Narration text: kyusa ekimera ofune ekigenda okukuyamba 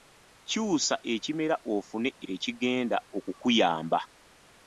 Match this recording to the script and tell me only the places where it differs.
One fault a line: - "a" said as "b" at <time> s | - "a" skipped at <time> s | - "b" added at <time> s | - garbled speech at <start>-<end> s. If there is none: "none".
none